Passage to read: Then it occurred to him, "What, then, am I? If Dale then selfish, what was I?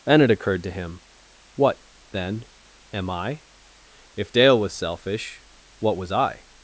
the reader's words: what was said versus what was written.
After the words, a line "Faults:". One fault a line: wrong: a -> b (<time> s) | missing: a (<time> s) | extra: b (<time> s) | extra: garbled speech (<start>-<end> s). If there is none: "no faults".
Then it occurred to him, "What, then, am I? If Dale was selfish, what was I?
Faults:
wrong: then -> was (4.6 s)